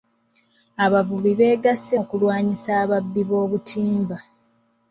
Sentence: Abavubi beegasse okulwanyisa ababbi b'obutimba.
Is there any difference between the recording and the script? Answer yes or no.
no